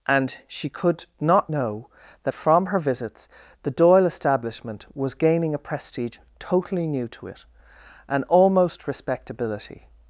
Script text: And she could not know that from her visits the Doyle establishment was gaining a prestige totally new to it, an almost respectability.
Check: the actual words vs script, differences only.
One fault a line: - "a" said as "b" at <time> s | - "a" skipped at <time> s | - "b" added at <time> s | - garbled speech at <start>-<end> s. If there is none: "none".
none